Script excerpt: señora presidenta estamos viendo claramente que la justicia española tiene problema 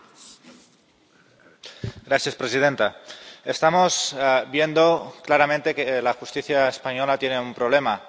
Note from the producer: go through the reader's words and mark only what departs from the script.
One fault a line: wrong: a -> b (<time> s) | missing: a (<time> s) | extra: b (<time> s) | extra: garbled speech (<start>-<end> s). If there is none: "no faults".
extra: un (7.4 s)